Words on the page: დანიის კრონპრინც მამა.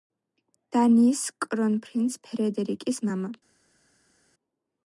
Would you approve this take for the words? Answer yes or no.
no